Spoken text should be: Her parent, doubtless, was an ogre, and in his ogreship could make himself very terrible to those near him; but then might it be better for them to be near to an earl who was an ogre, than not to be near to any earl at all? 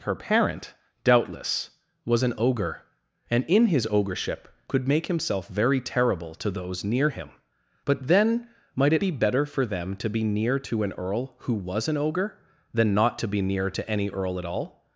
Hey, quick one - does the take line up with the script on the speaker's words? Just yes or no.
yes